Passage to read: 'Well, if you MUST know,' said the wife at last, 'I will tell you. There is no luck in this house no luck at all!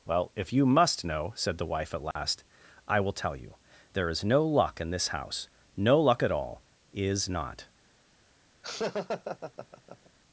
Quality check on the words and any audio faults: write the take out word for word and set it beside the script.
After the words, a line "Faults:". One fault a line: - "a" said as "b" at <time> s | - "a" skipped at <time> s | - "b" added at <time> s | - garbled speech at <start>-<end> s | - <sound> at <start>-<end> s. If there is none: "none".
'Well, if you MUST know,' said the wife at last, 'I will tell you. There is no luck in this house no luck at all! 'Is not
Faults:
- dropout at 2.1-2.2 s
- "Is not" added at 6.9 s
- laugh at 8.6-10.1 s